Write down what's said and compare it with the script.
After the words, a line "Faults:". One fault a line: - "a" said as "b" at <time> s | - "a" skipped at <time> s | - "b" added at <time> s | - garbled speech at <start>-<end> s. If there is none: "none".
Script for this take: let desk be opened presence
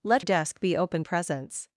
let desk be opened presence
Faults:
none